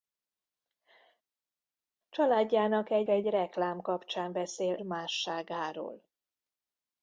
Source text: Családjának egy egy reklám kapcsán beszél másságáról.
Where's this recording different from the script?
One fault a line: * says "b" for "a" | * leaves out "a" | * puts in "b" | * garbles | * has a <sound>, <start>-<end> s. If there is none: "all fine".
all fine